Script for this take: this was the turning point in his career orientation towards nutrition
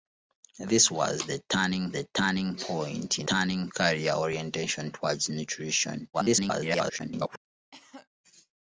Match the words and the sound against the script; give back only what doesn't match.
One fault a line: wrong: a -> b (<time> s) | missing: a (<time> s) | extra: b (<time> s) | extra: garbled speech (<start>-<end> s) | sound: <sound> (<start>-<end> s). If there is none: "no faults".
extra: the turning (1.9 s)
wrong: his -> turning (3.2 s)
extra: garbled speech (6.1-7.4 s)
sound: cough (7.7-8.1 s)